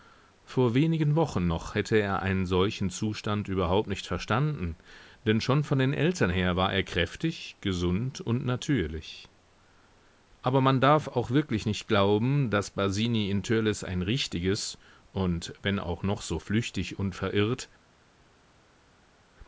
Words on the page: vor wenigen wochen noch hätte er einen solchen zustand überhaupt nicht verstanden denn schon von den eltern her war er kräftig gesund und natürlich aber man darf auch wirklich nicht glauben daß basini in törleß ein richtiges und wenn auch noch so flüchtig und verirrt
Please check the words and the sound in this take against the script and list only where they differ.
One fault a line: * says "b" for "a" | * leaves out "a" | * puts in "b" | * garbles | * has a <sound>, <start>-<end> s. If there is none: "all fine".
all fine